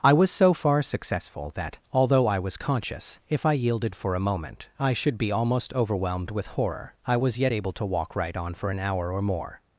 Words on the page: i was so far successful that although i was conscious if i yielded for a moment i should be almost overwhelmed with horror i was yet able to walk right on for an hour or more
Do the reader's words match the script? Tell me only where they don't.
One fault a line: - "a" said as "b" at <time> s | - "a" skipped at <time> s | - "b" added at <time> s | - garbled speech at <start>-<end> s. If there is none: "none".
none